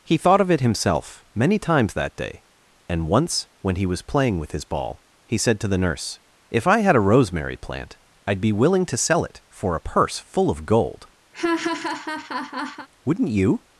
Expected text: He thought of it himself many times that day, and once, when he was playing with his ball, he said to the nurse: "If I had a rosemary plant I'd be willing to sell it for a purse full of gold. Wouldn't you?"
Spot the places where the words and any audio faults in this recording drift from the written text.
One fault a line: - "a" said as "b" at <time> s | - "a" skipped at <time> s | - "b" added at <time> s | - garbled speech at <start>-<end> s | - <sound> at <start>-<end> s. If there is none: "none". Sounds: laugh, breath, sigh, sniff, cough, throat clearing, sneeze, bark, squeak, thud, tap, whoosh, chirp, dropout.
- laugh at 11.3-12.9 s